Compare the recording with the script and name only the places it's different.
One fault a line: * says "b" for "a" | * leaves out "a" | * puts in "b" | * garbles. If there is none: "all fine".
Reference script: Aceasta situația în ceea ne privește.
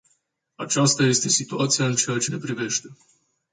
* puts in "este"
* puts in "ce"